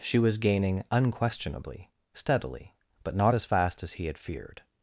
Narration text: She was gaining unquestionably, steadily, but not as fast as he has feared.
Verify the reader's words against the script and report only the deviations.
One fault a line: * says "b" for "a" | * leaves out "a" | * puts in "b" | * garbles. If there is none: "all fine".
* says "had" for "has"